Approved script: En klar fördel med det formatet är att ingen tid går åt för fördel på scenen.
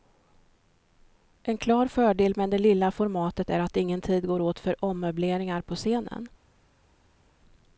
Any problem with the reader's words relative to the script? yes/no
yes